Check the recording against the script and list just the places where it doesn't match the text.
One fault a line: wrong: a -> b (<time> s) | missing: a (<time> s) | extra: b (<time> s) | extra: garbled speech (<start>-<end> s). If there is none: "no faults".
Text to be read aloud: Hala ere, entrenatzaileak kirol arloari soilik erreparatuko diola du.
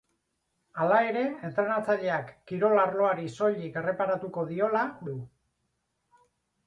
no faults